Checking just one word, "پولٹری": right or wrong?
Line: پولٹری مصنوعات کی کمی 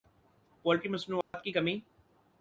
right